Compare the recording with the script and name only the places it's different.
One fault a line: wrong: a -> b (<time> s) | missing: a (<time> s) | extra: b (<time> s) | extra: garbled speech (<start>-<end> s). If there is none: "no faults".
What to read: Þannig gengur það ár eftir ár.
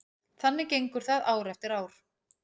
no faults